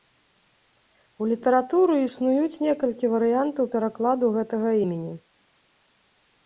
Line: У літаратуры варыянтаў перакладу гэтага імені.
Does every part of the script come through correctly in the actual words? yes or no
no